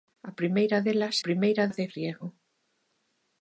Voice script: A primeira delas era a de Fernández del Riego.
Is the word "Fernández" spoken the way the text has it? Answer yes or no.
no